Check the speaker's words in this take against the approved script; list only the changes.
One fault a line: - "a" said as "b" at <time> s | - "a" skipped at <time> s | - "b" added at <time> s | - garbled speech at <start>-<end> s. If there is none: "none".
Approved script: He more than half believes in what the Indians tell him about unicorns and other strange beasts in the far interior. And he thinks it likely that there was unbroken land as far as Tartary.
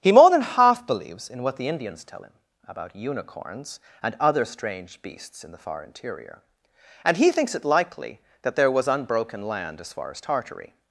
none